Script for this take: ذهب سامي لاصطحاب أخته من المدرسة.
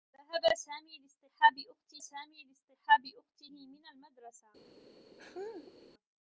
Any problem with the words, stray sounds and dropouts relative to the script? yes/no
yes